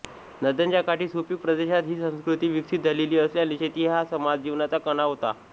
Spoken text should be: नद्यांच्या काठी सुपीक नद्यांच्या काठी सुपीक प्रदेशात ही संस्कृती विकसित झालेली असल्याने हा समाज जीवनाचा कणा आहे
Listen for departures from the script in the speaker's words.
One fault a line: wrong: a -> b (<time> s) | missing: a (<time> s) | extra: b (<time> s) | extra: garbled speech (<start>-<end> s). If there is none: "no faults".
missing: नद्यांच्या काठी सुपीक (1.4 s)
extra: शेती (3.5 s)
wrong: आहे -> होता (5.0 s)